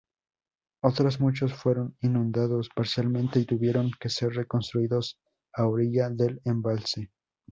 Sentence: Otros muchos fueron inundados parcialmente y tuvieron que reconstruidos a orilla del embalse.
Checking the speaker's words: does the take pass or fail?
fail